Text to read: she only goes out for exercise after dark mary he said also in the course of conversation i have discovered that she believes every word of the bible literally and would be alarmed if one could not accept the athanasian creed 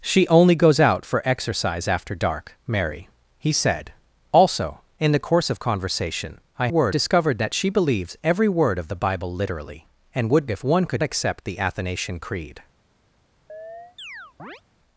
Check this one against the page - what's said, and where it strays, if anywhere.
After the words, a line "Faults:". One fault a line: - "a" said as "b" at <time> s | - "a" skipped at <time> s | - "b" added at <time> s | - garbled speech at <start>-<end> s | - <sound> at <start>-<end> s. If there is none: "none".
she only goes out for exercise after dark mary he said also in the course of conversation i word discovered that she believes every word of the bible literally and would if one could accept the athanasian creed
Faults:
- "have" said as "word" at 6.7 s
- "be alarmed" skipped at 10.4 s
- "not" skipped at 11.0 s
- chirp at 13.5-14.6 s